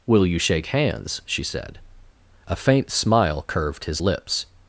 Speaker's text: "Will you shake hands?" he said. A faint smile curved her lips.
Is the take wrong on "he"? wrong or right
wrong